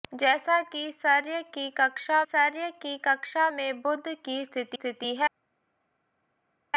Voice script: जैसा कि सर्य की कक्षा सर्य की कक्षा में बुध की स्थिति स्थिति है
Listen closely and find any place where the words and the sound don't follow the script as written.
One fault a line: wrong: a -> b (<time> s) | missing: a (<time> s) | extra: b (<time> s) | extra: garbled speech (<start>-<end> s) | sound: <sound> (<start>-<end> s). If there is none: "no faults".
no faults